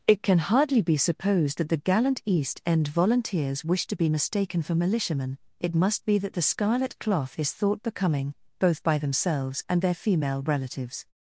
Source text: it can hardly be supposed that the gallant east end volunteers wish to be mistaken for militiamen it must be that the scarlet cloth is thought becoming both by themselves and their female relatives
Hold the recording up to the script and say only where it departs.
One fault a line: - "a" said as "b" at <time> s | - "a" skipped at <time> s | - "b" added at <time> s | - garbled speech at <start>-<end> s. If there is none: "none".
none